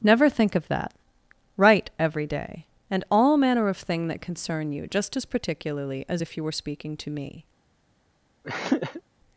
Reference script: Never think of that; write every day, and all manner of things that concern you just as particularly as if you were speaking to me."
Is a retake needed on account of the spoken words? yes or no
yes